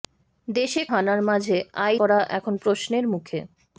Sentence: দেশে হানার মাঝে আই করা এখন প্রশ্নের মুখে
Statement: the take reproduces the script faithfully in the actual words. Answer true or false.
true